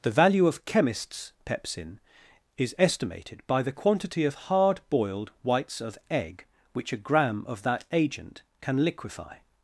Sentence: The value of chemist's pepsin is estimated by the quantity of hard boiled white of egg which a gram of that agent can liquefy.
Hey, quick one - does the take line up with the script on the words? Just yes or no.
no